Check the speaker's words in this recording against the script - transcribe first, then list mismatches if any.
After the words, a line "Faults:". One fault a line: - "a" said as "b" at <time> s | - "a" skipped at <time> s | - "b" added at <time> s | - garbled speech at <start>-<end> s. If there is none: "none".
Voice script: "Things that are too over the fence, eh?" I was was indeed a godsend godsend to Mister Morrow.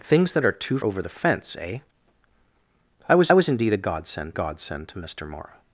"Things that are too over the fence, eh?" I was was indeed a godsend godsend to Mister Morrow.
Faults:
none